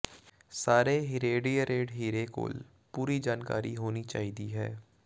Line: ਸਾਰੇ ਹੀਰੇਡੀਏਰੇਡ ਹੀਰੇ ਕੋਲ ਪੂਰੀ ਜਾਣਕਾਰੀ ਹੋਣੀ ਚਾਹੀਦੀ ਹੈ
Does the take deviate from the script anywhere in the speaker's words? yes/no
no